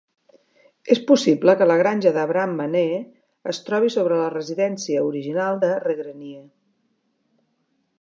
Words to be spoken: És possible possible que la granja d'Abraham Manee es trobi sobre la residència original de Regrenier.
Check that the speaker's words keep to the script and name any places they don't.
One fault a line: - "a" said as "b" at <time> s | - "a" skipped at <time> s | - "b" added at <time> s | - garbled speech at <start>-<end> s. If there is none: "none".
- "possible" skipped at 1.6 s